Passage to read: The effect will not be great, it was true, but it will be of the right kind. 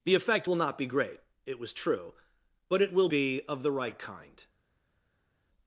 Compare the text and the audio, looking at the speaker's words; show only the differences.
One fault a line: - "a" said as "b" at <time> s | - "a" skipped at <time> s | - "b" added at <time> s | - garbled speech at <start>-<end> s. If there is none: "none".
none